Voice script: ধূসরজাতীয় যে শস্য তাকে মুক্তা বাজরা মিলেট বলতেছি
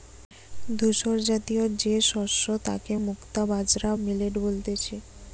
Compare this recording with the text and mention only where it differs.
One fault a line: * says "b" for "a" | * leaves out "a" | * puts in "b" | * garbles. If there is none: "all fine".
all fine